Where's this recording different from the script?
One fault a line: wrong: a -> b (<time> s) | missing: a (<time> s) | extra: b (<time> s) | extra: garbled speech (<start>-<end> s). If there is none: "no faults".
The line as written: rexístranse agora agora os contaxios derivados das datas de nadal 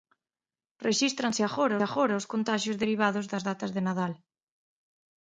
no faults